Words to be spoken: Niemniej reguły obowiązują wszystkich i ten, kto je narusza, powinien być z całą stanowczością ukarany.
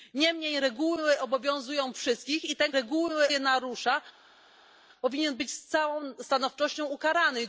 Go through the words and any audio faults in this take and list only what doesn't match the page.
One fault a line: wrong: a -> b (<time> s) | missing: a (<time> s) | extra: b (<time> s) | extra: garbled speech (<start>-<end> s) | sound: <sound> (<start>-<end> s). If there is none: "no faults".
wrong: kto -> reguły (2.7 s)